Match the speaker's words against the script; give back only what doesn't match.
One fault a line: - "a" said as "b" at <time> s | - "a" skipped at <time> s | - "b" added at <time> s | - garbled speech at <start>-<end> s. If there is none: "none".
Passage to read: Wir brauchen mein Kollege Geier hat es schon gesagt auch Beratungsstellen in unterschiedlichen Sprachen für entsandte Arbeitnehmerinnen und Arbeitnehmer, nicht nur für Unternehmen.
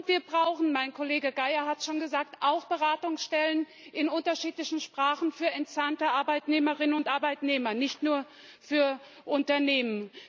none